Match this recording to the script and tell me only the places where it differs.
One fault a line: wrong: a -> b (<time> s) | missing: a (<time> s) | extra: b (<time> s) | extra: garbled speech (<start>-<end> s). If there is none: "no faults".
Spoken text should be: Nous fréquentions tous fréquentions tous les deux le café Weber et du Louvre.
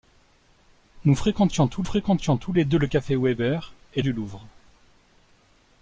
no faults